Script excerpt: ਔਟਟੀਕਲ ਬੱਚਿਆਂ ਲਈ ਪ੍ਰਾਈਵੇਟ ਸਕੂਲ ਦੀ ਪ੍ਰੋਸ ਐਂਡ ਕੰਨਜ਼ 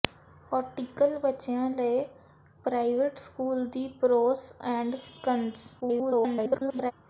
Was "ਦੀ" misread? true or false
false